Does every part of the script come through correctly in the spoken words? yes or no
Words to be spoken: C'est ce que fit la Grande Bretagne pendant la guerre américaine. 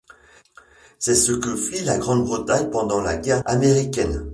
yes